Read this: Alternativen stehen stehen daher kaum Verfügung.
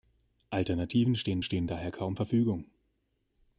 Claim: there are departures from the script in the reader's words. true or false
false